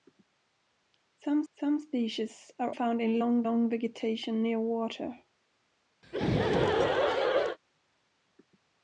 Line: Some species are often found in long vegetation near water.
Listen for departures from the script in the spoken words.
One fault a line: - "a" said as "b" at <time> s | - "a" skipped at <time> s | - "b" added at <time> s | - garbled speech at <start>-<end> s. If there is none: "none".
- "some" added at 1.5 s
- "often" skipped at 2.8 s
- "long" added at 3.4 s